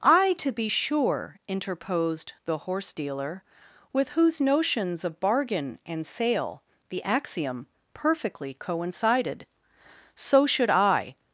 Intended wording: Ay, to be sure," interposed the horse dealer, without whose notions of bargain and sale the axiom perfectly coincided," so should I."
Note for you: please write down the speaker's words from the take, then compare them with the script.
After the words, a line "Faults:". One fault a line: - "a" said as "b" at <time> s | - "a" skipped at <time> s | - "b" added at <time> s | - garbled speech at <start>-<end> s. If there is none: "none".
Ay, to be sure," interposed the horse dealer, with whose notions of bargain and sale the axiom perfectly coincided," so should I."
Faults:
- "without" said as "with" at 3.9 s